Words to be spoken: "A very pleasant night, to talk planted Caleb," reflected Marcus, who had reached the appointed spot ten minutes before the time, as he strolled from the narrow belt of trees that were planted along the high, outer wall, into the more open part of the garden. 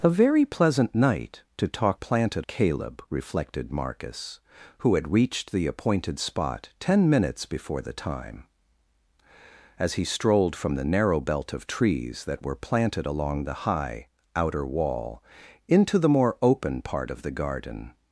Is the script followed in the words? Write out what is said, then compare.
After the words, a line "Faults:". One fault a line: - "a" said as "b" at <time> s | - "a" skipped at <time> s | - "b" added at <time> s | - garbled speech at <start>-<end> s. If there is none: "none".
"A very pleasant night, to talk planted Caleb," reflected Marcus, who had reached the appointed spot ten minutes before the time, as he strolled from the narrow belt of trees that were planted along the high, outer wall, into the more open part of the garden.
Faults:
none